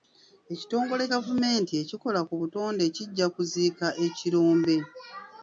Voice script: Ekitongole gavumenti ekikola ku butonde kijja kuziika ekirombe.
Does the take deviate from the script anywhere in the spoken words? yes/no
no